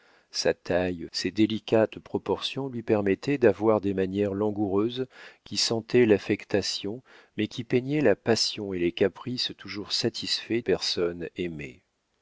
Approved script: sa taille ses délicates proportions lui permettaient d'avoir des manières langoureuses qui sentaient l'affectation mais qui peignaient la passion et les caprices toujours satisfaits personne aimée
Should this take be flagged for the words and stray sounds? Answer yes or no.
no